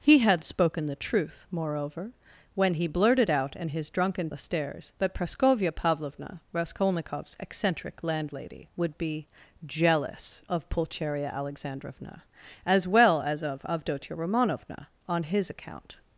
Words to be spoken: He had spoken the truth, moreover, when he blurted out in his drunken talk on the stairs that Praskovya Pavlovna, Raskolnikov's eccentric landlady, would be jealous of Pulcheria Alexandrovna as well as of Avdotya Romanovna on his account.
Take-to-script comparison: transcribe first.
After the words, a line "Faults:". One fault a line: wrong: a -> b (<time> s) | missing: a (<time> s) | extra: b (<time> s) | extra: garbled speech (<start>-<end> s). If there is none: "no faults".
He had spoken the truth, moreover, when he blurted out in his drunken the stairs that Praskovya Pavlovna, Raskolnikov's eccentric landlady, would be jealous of Pulcheria Alexandrovna as well as of Avdotya Romanovna on his account.
Faults:
missing: talk on (4.3 s)